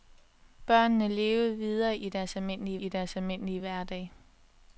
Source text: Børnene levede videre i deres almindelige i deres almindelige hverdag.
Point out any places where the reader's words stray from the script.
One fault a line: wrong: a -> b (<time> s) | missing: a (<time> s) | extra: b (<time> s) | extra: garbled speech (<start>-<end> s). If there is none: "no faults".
no faults